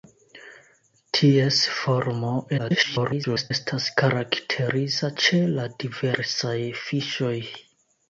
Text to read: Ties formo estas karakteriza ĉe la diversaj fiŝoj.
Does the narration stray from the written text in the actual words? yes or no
yes